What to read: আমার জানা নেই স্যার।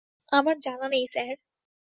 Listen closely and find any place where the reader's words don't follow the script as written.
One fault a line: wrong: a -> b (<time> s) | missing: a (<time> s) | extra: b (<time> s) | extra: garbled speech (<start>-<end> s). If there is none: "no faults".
no faults